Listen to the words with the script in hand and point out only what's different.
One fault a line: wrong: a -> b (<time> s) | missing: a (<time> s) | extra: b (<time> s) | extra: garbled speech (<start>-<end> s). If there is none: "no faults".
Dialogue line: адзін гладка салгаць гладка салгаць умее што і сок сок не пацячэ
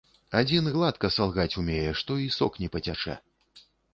missing: гладка салгаць (1.6 s)
missing: сок (2.5 s)